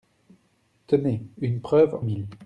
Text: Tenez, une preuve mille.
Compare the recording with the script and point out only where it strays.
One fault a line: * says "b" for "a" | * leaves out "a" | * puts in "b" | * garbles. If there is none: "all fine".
all fine